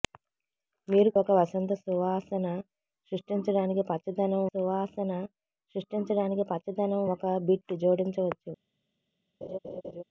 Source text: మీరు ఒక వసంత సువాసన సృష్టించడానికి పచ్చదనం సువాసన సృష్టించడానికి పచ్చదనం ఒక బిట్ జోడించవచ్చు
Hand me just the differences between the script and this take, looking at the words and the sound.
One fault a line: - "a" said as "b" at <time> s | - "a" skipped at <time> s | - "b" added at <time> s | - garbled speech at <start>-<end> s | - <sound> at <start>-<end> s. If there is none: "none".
- laugh at 9.4-10.0 s